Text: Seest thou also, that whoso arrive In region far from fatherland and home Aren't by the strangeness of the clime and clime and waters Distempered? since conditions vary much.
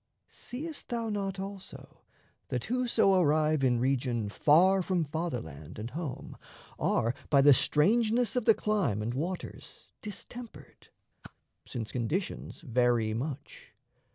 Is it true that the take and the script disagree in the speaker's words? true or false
true